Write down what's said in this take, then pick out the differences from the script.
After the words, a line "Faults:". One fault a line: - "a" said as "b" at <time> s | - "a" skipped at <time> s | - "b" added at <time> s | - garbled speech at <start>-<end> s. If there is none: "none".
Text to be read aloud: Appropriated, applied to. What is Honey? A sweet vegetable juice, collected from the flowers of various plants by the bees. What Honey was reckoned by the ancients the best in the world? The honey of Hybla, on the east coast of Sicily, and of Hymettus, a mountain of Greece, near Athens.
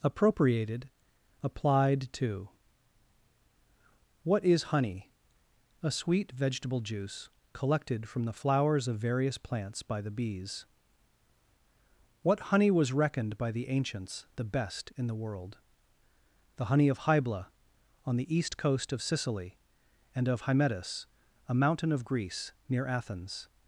Appropriated, applied to. What is Honey? A sweet vegetable juice, collected from the flowers of various plants by the bees. What Honey was reckoned by the ancients the best in the world? The honey of Hybla, on the east coast of Sicily, and of Hymettus, a mountain of Greece, near Athens.
Faults:
none